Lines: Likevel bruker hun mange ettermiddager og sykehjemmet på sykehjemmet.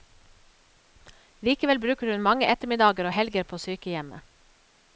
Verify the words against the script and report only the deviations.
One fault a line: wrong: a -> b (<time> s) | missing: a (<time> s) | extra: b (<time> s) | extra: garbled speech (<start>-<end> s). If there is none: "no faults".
wrong: sykehjemmet -> helger (3.2 s)